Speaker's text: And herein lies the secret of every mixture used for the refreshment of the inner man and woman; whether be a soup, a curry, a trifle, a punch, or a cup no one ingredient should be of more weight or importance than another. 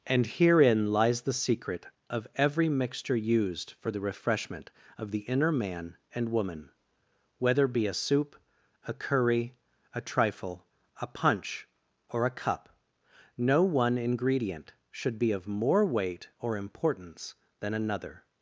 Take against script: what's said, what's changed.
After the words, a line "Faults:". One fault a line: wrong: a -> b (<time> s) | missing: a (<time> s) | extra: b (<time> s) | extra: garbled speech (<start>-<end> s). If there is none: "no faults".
And herein lies the secret of every mixture used for the refreshment of the inner man and woman; whether be a soup, a curry, a trifle, a punch, or a cup no one ingredient should be of more weight or importance than another.
Faults:
no faults